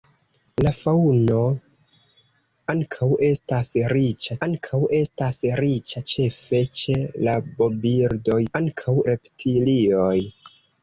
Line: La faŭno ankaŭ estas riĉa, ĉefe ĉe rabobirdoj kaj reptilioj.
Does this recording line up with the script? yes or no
no